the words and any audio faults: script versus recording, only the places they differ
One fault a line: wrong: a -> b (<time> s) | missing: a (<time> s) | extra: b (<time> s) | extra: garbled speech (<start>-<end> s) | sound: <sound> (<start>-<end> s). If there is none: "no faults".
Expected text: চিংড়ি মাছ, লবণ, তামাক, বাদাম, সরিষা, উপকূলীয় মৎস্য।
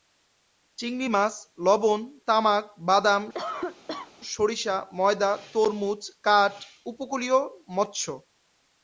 sound: cough (3.3-4.1 s)
extra: ময়দা তরমুজ কাঠ (4.9 s)